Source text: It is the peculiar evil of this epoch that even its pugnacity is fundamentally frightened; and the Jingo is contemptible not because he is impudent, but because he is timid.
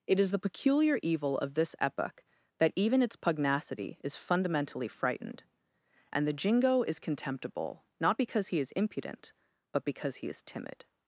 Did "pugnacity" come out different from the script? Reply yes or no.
no